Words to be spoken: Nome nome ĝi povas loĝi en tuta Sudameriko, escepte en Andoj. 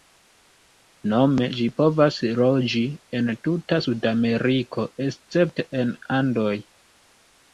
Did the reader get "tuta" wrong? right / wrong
right